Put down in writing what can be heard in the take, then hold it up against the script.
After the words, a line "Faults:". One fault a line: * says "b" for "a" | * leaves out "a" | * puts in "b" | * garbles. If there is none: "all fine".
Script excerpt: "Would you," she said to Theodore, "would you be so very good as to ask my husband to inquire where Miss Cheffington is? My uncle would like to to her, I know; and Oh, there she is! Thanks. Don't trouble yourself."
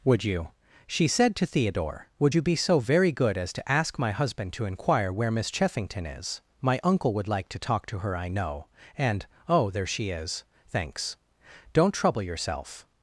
"Would you," she said to Theodore, "would you be so very good as to ask my husband to inquire where Miss Cheffington is? My uncle would like to talk to her, I know; and Oh, there she is! Thanks. Don't trouble yourself."
Faults:
* puts in "talk"